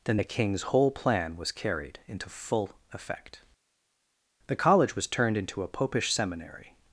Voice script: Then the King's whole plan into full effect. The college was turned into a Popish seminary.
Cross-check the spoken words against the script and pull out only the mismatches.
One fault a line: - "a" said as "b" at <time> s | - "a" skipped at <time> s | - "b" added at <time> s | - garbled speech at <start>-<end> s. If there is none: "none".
- "was carried" added at 1.3 s